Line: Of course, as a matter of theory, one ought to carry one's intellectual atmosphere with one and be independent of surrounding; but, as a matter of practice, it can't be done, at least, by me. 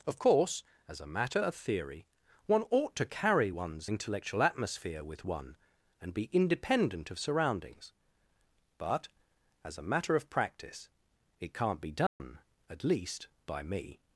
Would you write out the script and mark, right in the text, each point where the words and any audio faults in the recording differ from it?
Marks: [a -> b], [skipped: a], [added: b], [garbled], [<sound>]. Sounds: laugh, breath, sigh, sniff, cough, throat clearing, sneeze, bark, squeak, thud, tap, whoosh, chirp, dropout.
Of course, as a matter of theory, one ought to carry one's intellectual atmosphere with one and be independent of [surrounding; -> surroundings] but, as a matter of practice, it can't be done, [dropout] at least, by me.